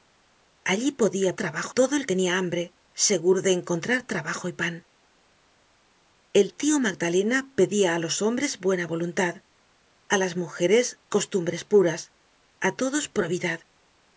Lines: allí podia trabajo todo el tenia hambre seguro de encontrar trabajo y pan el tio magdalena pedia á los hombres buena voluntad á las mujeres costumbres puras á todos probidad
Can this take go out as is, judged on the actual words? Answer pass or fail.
pass